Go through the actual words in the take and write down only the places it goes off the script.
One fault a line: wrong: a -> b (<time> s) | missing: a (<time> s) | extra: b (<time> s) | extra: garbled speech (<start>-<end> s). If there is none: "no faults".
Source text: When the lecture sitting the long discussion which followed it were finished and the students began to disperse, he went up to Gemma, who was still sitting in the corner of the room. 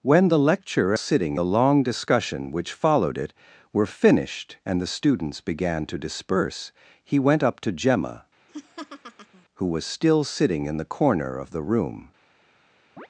no faults